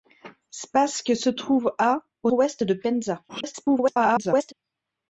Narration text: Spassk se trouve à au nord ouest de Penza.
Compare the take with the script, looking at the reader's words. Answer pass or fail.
fail